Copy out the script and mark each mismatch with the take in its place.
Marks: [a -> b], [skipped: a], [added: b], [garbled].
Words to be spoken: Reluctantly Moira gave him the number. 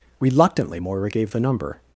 Reluctantly Moira gave [skipped: him] the number.